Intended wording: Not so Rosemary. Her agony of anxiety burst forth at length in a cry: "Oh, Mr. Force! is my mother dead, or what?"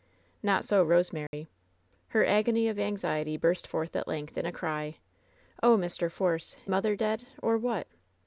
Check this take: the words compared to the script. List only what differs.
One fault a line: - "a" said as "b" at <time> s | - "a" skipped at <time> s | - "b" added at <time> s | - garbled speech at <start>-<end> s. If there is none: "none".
- "is my" skipped at 6.6 s